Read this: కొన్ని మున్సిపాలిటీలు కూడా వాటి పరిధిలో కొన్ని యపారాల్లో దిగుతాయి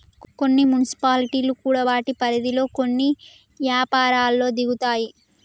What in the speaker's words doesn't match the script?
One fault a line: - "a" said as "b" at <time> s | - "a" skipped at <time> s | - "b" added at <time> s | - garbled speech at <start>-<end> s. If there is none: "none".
none